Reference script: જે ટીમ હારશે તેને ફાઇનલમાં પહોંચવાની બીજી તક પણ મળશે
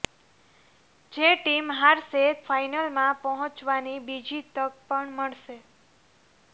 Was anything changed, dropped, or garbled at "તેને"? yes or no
yes